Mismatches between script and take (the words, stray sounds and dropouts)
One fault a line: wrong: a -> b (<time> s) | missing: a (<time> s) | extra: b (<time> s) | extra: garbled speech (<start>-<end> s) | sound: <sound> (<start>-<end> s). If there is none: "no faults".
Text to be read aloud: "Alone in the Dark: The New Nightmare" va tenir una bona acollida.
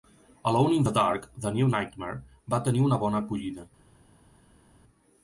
no faults